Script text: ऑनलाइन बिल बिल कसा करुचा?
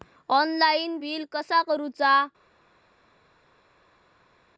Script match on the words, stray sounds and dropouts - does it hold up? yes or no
no